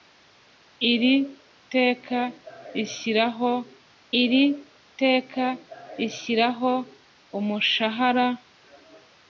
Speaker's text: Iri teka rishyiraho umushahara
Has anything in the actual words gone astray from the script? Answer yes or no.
yes